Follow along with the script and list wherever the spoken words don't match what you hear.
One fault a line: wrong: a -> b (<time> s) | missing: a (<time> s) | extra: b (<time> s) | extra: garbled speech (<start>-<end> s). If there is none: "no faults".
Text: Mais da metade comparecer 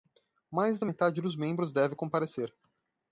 extra: dos membros deve (1.2 s)